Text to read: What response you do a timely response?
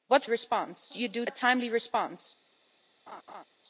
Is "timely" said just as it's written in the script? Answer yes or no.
yes